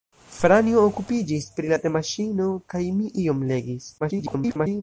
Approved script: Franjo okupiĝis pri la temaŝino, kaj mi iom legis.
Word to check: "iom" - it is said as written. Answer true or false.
true